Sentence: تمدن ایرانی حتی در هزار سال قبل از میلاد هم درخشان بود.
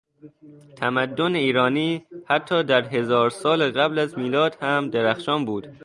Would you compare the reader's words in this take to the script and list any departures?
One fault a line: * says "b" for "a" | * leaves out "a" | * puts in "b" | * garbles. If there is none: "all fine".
all fine